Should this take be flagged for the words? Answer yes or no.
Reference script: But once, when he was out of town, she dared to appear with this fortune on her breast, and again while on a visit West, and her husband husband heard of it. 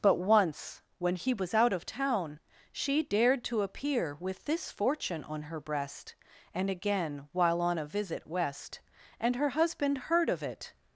yes